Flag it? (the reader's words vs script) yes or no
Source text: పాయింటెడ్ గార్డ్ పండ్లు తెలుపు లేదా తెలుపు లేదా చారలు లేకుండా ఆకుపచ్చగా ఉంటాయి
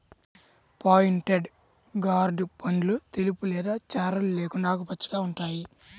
yes